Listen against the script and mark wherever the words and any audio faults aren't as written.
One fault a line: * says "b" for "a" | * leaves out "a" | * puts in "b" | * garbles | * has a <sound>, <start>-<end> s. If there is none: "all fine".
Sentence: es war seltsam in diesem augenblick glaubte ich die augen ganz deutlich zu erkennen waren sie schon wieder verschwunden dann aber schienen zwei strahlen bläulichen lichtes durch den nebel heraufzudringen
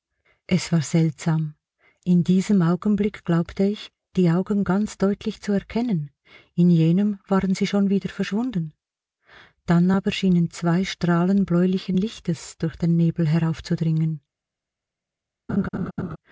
* puts in "in jenem"
* has a laugh, 15.5-16.2 s